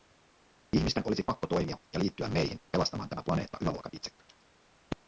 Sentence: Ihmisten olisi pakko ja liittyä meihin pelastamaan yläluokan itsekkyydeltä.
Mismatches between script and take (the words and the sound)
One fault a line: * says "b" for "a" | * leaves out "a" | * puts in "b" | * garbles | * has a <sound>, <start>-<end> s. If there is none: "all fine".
* puts in "toimia"
* puts in "tämä planeetta"